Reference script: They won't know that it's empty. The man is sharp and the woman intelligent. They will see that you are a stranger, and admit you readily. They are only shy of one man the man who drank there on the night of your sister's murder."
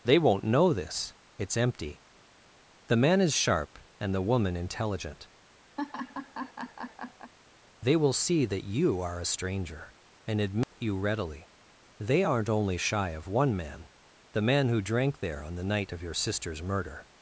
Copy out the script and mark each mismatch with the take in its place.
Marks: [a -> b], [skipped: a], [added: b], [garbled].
They won't know [that -> this] it's empty. The man is sharp and the woman intelligent. They will see that you are a stranger, and admit you readily. They [are -> aren't] only shy of one man the man who drank there on the night of your sister's murder."